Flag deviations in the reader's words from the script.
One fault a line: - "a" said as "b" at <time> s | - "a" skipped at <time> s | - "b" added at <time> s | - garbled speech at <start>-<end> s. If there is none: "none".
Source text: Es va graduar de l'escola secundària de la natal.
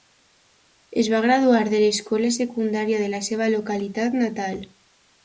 - "seva localitat" added at 3.3 s